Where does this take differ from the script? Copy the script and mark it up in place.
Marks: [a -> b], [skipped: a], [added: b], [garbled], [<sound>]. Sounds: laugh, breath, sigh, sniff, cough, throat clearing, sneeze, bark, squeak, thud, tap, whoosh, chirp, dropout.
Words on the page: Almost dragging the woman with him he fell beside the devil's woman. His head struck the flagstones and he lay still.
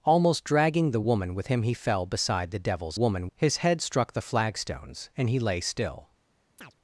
Almost dragging the woman with him he fell beside the devil's woman. His head struck the flagstones and he lay still. [chirp]